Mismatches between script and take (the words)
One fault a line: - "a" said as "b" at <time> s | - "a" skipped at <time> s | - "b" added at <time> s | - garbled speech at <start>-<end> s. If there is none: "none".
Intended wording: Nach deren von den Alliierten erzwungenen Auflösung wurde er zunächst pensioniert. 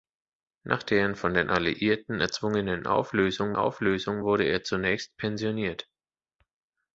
- "Auflösung" added at 3.5 s